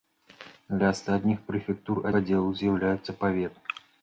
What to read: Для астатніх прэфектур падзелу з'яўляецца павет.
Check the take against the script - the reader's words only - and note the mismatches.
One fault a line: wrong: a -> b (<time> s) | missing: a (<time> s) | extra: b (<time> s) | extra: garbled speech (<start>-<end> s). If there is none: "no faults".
no faults